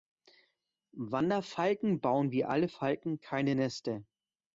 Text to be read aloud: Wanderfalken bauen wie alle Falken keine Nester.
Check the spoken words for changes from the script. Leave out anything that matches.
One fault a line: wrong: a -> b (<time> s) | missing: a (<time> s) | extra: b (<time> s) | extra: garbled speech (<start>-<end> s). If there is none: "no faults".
no faults